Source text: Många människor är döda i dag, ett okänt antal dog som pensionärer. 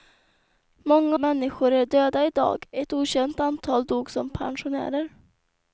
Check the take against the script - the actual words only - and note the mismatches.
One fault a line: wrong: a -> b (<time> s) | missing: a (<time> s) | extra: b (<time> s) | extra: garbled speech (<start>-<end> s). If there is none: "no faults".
no faults